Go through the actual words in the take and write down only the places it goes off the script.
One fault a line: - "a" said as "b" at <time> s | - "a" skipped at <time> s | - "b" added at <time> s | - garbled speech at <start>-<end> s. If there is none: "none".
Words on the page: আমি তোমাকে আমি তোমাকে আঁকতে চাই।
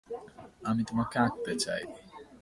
- "আমি তোমাকে" skipped at 1.2 s